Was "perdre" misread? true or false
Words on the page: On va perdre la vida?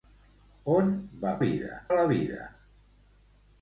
true